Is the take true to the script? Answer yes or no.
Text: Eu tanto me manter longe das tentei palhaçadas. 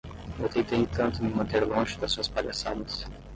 no